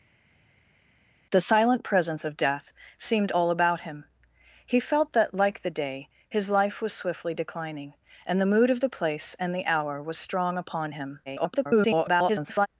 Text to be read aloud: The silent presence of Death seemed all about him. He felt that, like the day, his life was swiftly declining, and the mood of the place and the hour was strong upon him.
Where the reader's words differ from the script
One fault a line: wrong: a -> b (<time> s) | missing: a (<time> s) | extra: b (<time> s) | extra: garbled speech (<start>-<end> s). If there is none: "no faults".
extra: garbled speech (11.3-12.7 s)